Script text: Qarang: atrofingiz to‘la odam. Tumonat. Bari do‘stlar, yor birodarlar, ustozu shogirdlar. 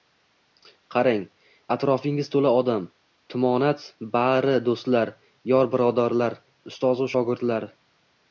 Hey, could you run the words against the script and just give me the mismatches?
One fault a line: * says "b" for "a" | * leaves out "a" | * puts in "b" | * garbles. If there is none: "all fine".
all fine